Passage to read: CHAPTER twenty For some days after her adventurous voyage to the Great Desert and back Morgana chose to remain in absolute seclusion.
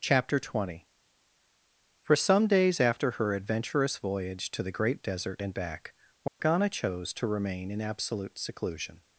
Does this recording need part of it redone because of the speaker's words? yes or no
no